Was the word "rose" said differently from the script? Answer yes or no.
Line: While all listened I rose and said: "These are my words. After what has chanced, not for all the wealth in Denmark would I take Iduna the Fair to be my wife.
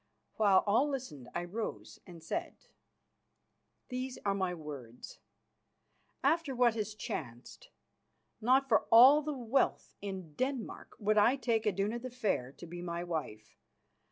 no